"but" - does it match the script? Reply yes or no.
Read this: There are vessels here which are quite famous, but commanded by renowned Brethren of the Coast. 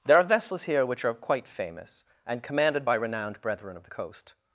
no